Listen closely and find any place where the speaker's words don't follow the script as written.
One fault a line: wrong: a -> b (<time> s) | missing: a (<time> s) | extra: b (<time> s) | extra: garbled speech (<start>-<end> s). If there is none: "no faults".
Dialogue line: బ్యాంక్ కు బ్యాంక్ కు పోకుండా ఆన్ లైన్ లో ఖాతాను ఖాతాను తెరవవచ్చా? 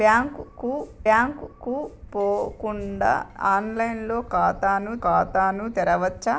no faults